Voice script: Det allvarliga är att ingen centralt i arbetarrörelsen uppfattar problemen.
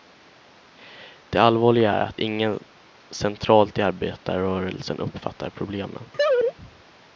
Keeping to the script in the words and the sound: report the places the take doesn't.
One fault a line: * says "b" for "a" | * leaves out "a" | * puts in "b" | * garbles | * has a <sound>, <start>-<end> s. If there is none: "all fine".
* has a laugh, 6.1-6.5 s